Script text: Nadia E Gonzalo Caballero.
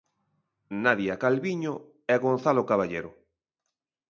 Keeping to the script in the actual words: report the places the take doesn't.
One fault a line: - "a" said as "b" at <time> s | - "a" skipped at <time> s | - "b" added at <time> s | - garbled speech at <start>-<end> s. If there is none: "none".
- "Calviño" added at 1.2 s